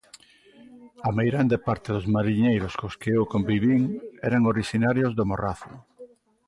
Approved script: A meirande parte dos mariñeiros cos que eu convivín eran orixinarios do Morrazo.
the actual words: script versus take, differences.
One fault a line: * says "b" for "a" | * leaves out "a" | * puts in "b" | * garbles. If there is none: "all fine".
all fine